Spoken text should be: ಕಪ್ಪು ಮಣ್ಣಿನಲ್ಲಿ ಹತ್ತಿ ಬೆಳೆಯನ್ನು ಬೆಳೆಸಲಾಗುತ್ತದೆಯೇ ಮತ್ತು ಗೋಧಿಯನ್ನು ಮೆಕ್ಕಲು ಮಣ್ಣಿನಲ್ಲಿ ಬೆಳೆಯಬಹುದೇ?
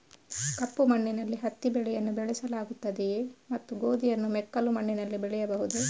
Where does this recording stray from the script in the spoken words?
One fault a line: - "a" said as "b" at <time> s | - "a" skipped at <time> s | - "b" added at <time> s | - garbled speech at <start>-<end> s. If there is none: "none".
none